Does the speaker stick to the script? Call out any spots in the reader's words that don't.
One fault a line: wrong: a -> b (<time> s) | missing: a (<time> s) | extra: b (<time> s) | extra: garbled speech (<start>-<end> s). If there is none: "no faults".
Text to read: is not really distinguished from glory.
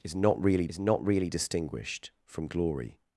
extra: is not really (0.7 s)